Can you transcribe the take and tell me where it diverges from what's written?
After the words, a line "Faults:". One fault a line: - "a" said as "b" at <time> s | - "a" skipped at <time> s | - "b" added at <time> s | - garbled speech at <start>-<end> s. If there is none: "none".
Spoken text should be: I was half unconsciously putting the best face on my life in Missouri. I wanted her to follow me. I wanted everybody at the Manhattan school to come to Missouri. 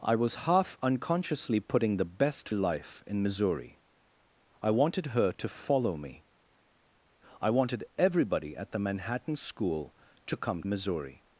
I was half unconsciously putting the best life in Missouri. I wanted her to follow me. I wanted everybody at the Manhattan school to come Missouri.
Faults:
- "face on my" skipped at 2.5 s
- "to" skipped at 10.6 s